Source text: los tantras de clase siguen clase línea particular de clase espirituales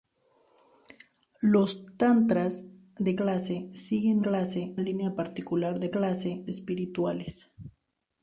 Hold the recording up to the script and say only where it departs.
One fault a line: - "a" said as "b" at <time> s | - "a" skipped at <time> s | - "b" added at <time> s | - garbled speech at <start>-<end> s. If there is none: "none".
none